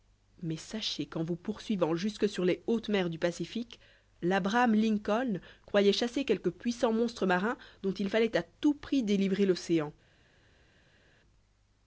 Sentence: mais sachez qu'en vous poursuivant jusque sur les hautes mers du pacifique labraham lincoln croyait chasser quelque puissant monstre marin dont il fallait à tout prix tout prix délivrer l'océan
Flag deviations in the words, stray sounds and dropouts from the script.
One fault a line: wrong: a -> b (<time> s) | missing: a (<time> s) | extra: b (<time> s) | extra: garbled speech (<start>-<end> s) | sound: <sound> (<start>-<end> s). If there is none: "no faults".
missing: tout prix (9.0 s)